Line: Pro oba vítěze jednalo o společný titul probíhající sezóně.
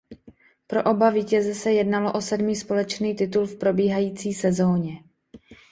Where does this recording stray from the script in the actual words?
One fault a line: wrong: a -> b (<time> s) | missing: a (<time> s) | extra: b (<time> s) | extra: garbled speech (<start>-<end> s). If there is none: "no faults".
extra: se (1.6 s)
extra: sedmý (2.2 s)
extra: v (3.5 s)